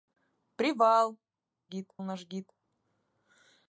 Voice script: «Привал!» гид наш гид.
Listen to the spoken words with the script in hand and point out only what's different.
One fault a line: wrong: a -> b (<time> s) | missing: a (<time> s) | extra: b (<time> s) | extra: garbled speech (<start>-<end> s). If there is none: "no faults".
no faults